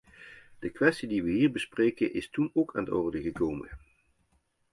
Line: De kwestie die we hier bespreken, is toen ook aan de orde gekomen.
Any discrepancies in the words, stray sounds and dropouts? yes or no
no